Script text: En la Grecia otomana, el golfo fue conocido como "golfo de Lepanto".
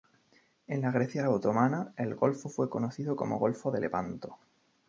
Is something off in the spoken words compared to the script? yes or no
no